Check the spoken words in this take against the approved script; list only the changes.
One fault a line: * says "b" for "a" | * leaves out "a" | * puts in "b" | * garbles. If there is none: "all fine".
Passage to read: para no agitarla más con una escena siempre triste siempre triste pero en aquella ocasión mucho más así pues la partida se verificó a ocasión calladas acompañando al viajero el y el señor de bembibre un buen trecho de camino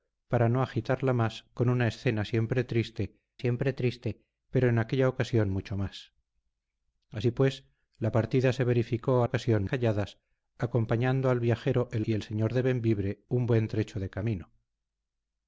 all fine